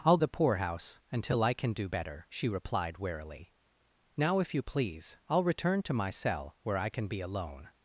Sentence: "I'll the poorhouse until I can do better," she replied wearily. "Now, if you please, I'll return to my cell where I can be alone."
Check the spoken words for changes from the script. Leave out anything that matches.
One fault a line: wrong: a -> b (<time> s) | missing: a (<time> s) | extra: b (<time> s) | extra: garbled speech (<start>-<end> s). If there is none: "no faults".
no faults